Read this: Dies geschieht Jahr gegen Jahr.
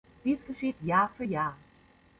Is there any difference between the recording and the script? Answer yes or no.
yes